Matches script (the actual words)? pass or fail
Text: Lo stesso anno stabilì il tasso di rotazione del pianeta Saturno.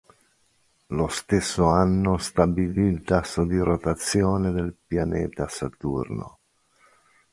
pass